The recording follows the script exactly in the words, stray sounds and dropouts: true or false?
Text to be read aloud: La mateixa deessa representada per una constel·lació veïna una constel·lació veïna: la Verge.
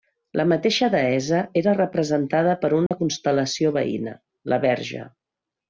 false